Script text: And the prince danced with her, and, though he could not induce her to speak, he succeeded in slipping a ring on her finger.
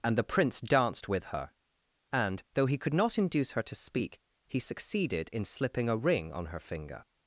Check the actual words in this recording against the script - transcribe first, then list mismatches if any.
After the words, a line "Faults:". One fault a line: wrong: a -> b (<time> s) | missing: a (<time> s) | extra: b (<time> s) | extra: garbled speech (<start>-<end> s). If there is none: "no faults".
And the prince danced with her, and, though he could not induce her to speak, he succeeded in slipping a ring on her finger.
Faults:
no faults